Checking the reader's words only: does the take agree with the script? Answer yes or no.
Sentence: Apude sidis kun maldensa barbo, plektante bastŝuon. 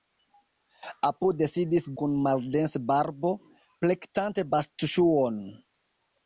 yes